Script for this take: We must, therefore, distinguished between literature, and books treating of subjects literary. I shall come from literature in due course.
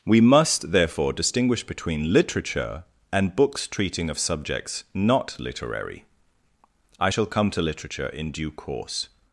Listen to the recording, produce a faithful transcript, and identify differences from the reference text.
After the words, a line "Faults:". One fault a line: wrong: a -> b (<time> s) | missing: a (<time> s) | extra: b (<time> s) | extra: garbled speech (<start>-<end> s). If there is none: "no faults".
We must, therefore, distinguish between literature, and books treating of subjects not literary. I shall come to literature in due course.
Faults:
wrong: distinguished -> distinguish (1.1 s)
extra: not (4.9 s)
wrong: from -> to (7.5 s)